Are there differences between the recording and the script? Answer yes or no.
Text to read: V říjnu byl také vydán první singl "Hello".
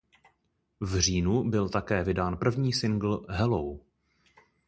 no